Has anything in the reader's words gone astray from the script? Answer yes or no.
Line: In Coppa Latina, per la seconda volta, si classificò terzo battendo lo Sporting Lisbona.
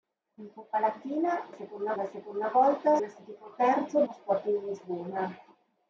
yes